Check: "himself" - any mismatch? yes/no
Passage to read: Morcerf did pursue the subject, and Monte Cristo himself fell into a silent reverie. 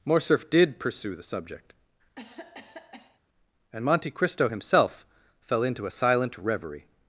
no